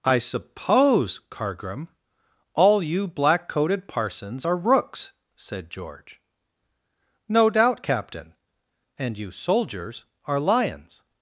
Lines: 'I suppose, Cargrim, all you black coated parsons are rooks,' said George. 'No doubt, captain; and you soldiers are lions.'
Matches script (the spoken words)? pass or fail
pass